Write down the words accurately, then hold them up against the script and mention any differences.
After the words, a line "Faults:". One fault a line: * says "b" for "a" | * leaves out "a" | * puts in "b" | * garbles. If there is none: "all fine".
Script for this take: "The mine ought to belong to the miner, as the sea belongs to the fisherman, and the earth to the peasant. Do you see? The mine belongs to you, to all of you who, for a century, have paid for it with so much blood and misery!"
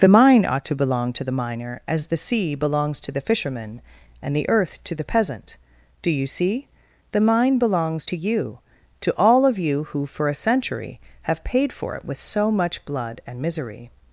"The mine ought to belong to the miner, as the sea belongs to the fisherman, and the earth to the peasant. Do you see? The mine belongs to you, to all of you who, for a century, have paid for it with so much blood and misery!"
Faults:
all fine